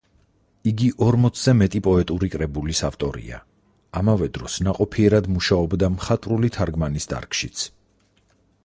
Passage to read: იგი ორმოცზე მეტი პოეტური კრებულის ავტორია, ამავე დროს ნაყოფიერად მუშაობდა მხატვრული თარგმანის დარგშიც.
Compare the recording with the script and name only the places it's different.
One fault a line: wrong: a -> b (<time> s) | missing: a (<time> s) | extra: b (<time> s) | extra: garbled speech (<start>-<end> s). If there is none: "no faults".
no faults